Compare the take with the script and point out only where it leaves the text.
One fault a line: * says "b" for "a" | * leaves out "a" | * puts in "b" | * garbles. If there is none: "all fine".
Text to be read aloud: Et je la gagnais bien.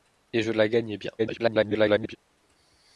* garbles